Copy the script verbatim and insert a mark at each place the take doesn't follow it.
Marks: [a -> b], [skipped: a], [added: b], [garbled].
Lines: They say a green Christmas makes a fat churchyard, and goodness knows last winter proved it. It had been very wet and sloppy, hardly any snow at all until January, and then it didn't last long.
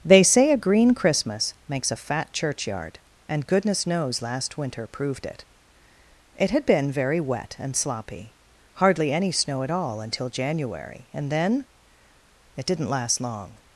They say a green Christmas makes a fat churchyard, and goodness knows last winter proved it. It had been very wet and sloppy, hardly any snow at all until January, and then it didn't last long.